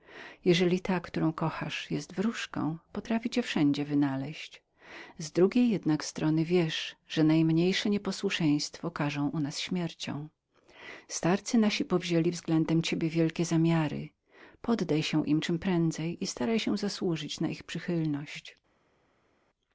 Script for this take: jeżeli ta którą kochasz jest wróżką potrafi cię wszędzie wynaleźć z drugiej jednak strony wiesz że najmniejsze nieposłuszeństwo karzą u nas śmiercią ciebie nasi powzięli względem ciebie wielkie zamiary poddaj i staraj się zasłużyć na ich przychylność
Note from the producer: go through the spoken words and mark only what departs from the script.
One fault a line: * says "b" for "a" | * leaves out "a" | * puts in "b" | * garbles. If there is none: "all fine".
* says "starcy" for "ciebie"
* puts in "się im czemprędzej"